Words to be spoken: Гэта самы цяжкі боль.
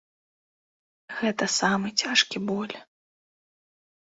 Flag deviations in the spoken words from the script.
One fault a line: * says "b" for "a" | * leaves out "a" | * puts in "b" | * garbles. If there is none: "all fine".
all fine